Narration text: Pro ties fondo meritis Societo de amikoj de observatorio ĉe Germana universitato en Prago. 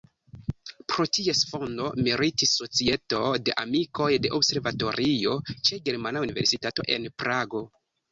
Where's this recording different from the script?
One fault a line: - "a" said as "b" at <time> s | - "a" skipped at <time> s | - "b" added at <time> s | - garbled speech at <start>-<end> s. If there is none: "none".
none